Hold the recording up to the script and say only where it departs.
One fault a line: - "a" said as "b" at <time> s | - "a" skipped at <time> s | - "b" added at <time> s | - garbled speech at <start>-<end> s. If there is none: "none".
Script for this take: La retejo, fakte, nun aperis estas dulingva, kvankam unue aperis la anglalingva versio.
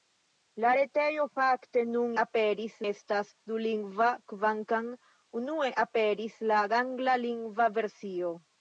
none